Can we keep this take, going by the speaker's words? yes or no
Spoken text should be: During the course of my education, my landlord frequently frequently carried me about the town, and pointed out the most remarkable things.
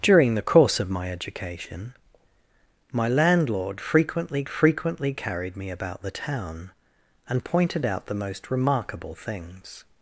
yes